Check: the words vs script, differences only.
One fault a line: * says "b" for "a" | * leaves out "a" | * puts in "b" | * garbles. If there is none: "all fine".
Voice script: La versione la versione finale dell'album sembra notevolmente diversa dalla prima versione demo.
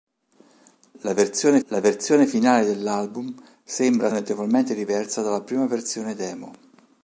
all fine